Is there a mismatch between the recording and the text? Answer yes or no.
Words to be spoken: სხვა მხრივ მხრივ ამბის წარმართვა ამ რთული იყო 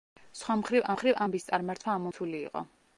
no